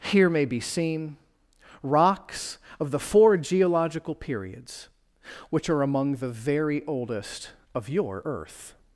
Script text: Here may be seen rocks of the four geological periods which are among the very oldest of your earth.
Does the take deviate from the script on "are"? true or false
false